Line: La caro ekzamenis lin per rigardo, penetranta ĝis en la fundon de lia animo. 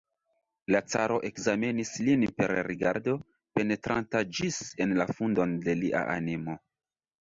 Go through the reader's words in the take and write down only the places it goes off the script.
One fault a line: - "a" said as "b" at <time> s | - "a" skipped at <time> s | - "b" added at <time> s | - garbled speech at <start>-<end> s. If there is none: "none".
none